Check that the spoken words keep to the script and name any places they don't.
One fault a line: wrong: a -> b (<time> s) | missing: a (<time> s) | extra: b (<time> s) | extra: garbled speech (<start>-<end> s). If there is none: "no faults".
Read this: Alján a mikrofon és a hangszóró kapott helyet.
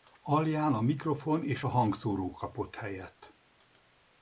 no faults